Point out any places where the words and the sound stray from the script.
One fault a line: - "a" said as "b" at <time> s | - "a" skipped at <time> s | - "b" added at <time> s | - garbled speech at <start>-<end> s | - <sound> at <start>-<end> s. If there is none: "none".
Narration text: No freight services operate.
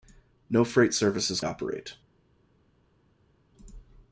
none